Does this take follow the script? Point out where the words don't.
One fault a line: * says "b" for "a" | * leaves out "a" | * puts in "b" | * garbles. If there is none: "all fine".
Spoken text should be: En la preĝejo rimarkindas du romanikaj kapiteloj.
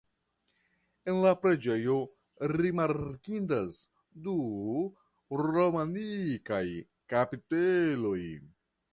all fine